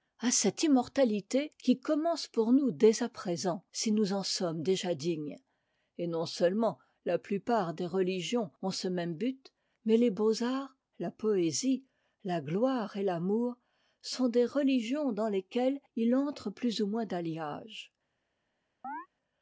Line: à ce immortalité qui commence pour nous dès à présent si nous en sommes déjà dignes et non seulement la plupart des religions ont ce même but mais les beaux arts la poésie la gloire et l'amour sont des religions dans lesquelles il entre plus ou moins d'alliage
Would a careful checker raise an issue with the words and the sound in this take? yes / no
yes